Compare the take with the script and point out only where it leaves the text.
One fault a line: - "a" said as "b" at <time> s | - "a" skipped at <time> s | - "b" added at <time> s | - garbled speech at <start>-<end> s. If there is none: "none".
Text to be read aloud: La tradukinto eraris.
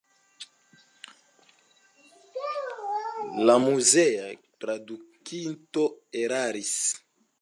- "muzea" added at 3.6 s